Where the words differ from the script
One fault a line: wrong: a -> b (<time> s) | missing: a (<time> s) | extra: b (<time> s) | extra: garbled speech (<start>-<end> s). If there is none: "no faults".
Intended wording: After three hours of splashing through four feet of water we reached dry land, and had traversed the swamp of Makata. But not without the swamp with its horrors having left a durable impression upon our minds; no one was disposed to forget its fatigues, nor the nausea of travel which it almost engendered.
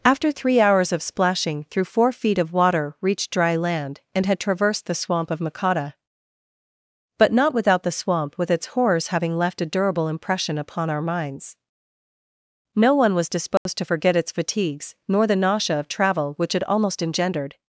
missing: we (3.0 s)